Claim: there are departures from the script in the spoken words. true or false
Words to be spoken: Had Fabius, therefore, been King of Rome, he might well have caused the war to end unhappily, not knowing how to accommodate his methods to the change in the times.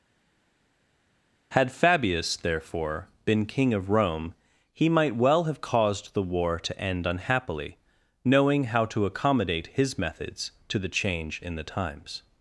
true